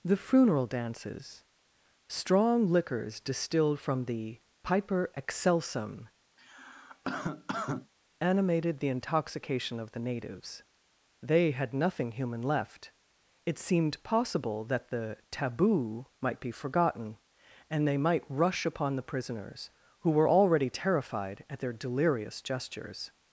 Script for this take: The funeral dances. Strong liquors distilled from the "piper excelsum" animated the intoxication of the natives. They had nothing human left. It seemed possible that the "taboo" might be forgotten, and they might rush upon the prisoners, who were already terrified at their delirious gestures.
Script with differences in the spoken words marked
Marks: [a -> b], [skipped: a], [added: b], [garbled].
The funeral dances. Strong liquors distilled from the "piper excelsum" animated the intoxication of the natives. They had nothing human left. It seemed possible that the "taboo" might be forgotten, and they might rush upon the prisoners, who were already terrified at their delirious gestures.